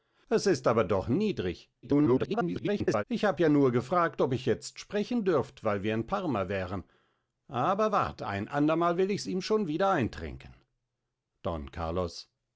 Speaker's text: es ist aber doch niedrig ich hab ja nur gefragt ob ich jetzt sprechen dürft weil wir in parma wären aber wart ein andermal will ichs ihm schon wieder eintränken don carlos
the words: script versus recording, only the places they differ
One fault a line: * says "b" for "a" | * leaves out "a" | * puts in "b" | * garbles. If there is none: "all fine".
* garbles